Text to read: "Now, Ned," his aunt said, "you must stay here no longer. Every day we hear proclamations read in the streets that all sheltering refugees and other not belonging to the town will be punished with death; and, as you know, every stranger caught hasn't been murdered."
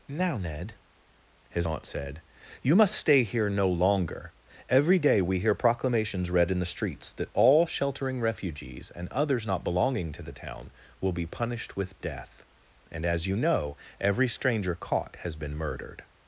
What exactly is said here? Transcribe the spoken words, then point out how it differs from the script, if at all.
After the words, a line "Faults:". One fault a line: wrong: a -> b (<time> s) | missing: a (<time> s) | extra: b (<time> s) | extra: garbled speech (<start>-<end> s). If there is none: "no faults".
"Now, Ned," his aunt said, "you must stay here no longer. Every day we hear proclamations read in the streets that all sheltering refugees and others not belonging to the town will be punished with death; and, as you know, every stranger caught has been murdered."
Faults:
wrong: other -> others (9.1 s)
wrong: hasn't -> has (15.2 s)